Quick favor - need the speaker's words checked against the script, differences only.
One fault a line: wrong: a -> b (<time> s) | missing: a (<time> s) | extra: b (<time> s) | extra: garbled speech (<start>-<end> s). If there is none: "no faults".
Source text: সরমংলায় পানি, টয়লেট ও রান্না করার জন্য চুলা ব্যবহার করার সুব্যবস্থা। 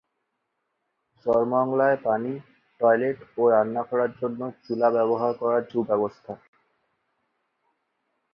no faults